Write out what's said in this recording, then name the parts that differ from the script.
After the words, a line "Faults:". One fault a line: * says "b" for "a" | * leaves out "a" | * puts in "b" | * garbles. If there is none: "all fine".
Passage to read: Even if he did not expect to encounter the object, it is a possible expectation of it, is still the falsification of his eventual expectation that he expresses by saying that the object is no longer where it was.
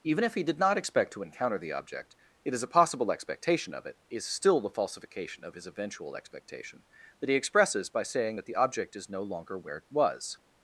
Even if he did not expect to encounter the object, it is a possible expectation of it, is still the falsification of his eventual expectation that he expresses by saying that the object is no longer where it was.
Faults:
all fine